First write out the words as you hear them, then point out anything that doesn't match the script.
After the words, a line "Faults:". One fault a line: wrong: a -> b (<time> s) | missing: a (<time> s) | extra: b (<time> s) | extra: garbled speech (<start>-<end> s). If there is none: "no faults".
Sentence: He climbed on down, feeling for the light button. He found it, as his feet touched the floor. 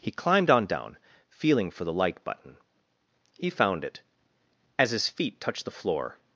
He climbed on down, feeling for the like button. He found it, as his feet touched the floor.
Faults:
wrong: light -> like (1.9 s)